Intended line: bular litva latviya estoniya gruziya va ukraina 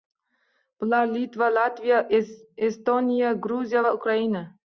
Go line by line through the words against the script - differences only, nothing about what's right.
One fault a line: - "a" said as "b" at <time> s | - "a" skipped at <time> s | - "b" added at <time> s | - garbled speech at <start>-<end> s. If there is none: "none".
none